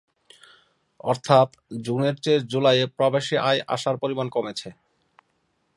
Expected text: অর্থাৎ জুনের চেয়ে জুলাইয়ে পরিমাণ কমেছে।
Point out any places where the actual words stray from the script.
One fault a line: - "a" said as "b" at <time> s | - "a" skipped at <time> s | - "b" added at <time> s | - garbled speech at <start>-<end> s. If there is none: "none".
- "প্রবাসী আয় আসার" added at 3.0 s